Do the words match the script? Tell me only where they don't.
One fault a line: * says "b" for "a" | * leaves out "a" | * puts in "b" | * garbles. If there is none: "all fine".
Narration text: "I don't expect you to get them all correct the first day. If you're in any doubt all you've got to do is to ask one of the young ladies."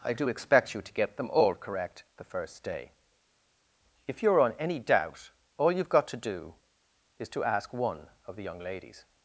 * says "do" for "don't"
* says "on" for "in"